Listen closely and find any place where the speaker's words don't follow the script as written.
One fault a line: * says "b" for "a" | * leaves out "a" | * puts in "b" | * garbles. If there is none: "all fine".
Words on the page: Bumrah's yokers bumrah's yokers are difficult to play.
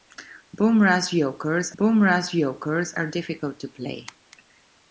all fine